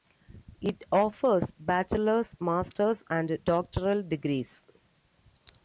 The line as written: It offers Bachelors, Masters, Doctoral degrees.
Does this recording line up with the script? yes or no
no